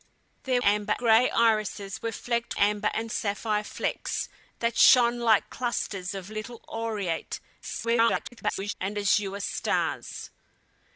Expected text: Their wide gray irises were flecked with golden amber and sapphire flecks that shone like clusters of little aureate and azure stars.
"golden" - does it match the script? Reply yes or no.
no